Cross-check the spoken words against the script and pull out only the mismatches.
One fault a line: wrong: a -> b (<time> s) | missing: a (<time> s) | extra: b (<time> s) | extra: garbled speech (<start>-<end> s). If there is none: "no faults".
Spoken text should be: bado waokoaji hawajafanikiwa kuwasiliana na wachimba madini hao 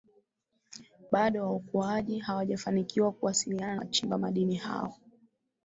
missing: na (3.8 s)